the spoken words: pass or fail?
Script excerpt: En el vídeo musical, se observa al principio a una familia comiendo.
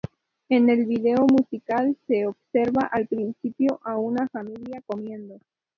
pass